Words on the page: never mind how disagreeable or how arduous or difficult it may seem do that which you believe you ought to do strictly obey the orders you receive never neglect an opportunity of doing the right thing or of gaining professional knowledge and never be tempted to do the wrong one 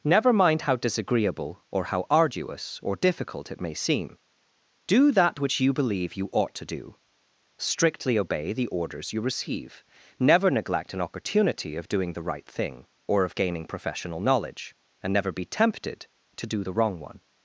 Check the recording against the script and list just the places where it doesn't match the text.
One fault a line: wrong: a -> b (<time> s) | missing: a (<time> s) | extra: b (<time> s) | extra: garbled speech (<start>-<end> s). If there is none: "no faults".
no faults